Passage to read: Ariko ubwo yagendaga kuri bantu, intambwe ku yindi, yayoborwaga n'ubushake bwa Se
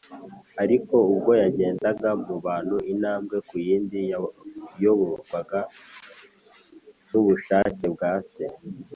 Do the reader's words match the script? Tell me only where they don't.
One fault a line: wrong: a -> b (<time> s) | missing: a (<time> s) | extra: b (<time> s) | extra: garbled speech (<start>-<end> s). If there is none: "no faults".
wrong: kuri -> mu (2.2 s)